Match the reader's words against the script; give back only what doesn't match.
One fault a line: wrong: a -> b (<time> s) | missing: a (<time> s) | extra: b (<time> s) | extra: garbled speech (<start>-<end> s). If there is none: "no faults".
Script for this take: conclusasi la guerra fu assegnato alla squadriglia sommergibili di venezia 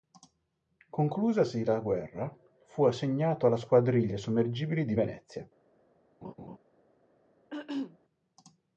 no faults